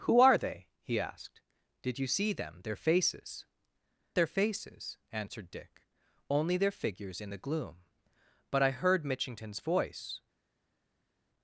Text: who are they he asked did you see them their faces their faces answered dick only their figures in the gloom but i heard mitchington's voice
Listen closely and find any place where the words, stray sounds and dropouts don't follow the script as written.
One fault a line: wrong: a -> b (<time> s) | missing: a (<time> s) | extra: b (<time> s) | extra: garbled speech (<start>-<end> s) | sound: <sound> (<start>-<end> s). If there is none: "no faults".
no faults